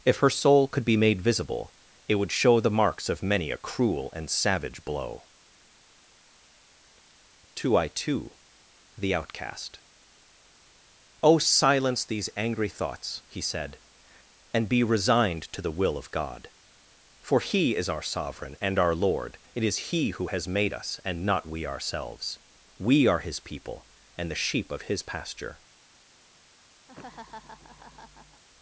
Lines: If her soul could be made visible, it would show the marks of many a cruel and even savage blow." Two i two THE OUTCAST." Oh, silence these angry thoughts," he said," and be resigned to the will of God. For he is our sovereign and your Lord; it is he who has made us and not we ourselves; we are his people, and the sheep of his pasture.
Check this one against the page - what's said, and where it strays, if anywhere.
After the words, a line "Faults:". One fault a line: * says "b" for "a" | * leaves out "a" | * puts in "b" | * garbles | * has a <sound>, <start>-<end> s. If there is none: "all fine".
If her soul could be made visible, it would show the marks of many a cruel and savage blow." Two i two THE OUTCAST." Oh, silence these angry thoughts," he said," and be resigned to the will of God. For he is our sovereign and our Lord; it is he who has made us and not we ourselves; we are his people, and the sheep of his pasture.
Faults:
* leaves out "even"
* says "our" for "your"
* has a laugh, 26.9-28.4 s